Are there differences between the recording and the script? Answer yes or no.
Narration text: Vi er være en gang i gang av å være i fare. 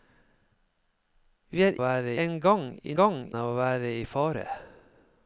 no